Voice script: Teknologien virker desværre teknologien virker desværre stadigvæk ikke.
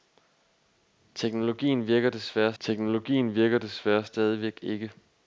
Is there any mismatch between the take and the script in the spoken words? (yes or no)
no